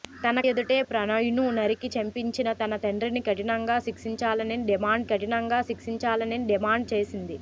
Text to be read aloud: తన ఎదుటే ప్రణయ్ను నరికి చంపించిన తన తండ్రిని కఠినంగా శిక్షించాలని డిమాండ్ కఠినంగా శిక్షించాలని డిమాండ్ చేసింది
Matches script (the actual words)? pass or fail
pass